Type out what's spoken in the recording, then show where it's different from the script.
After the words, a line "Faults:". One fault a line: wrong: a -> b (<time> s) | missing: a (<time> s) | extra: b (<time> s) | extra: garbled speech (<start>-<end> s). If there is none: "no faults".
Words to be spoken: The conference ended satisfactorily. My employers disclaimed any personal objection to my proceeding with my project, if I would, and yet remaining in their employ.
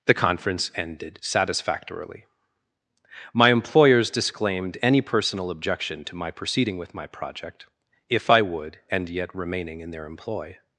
The conference ended satisfactorily. My employers disclaimed any personal objection to my proceeding with my project, if I would, and yet remaining in their employ.
Faults:
no faults